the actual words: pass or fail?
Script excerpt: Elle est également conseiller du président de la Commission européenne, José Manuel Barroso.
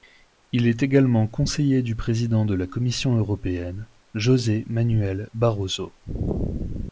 fail